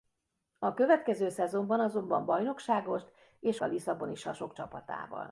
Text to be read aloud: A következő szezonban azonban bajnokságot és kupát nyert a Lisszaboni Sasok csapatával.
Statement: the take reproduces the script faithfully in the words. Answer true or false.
false